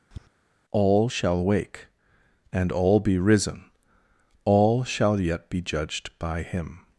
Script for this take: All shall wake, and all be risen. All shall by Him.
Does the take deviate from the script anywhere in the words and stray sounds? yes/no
yes